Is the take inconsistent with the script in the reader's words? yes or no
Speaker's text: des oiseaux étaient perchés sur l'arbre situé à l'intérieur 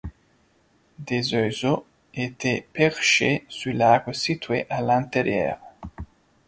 no